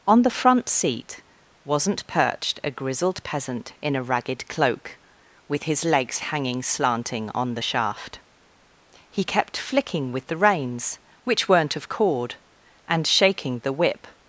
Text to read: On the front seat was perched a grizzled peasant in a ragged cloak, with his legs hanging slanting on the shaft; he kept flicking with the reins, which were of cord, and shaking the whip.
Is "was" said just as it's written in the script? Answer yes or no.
no